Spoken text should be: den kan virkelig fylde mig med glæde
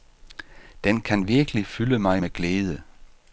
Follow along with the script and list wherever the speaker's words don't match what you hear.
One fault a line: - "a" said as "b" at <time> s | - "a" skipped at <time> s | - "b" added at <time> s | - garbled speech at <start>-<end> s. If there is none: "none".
none